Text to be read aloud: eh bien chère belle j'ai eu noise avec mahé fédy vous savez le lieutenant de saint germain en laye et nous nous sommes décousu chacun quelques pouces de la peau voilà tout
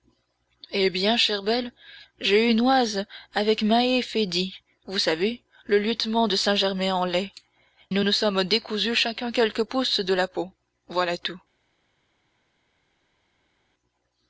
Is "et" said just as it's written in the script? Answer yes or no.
no